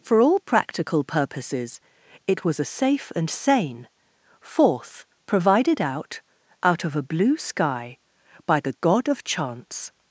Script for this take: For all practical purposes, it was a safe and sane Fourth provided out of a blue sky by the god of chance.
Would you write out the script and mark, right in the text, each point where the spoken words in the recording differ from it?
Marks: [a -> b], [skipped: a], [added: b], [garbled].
For all practical purposes, it was a safe and sane Fourth provided out [added: out] of a blue sky by the god of chance.